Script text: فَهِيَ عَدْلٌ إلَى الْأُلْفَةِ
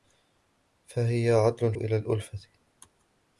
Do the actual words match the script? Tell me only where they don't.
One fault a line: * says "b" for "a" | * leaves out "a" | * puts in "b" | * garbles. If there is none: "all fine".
all fine